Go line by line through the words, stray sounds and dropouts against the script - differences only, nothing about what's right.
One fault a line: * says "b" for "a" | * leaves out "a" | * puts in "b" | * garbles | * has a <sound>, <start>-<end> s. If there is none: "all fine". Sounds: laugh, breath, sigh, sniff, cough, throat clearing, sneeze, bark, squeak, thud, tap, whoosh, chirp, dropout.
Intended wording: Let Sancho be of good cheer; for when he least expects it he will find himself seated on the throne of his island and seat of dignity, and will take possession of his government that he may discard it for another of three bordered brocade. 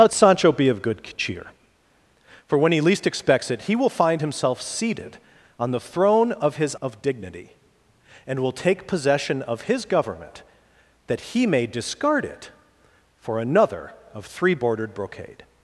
* leaves out "island and seat"